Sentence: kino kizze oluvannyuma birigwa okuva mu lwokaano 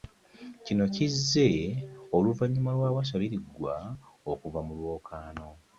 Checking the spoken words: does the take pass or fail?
fail